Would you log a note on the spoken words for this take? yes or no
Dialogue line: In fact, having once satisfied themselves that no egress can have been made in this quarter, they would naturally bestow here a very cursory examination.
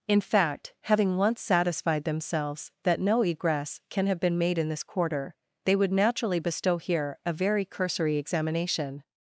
no